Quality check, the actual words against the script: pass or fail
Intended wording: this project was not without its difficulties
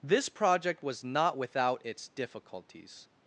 pass